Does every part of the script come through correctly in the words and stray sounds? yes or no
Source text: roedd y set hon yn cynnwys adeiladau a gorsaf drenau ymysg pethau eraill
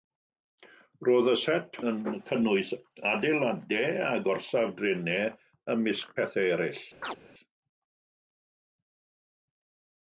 no